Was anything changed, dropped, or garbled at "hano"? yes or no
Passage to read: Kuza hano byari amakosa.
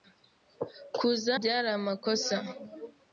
yes